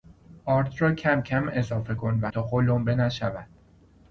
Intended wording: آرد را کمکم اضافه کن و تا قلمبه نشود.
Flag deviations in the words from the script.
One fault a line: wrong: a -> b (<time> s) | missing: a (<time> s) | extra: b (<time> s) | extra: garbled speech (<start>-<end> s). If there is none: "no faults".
no faults